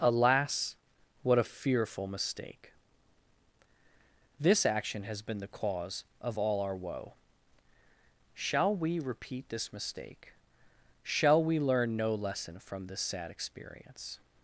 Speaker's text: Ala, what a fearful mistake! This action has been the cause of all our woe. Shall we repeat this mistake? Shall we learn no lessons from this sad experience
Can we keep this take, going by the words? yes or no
no